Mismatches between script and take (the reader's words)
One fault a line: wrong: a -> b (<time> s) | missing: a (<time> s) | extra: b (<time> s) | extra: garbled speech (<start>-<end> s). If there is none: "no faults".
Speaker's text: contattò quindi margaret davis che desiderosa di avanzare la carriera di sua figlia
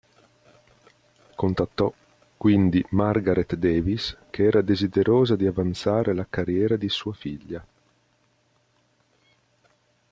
extra: era (4.5 s)